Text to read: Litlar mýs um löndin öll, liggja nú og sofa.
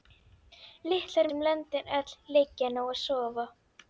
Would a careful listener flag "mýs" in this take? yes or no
yes